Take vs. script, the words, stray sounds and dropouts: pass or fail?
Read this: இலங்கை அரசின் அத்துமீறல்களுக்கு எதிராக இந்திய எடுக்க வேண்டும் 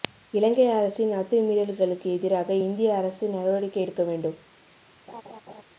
fail